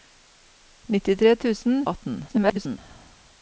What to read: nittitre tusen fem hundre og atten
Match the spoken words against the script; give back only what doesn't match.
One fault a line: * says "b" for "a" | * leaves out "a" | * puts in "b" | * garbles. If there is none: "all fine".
* leaves out "fem hundre"
* garbles